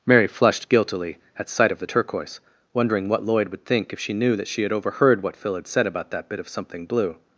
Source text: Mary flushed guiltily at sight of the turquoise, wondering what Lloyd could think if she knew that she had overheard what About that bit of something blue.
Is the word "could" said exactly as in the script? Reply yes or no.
no